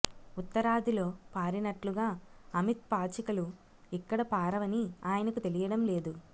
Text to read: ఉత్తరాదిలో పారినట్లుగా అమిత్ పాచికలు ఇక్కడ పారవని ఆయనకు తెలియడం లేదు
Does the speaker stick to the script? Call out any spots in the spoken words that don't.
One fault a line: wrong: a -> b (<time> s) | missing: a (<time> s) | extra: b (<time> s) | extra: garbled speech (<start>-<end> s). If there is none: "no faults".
no faults